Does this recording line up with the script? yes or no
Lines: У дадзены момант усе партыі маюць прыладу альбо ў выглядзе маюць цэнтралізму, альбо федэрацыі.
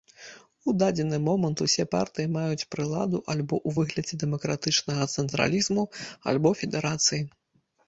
no